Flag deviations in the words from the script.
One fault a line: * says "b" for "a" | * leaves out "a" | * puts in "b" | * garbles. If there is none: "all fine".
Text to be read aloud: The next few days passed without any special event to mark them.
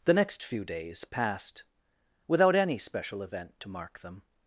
all fine